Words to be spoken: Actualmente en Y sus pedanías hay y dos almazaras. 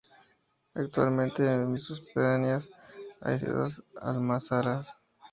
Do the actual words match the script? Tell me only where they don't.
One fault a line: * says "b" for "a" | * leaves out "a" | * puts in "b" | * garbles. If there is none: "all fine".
all fine